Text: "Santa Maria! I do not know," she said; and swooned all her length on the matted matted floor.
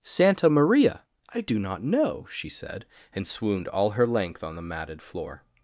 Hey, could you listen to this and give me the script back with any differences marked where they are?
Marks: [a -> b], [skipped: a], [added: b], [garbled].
"Santa Maria! I do not know," she said; and swooned all her length on the matted [skipped: matted] floor.